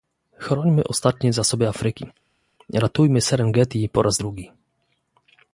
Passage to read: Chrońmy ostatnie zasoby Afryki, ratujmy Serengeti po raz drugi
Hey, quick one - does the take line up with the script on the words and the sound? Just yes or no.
yes